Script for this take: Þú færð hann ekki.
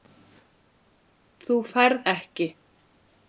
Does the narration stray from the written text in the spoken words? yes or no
yes